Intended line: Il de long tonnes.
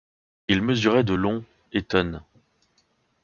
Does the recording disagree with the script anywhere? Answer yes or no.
yes